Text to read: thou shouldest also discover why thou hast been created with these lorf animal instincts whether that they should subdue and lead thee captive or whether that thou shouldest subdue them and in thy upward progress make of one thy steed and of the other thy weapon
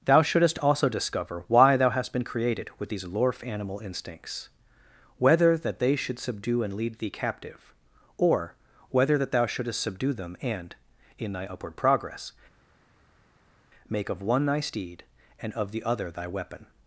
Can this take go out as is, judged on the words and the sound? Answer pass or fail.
pass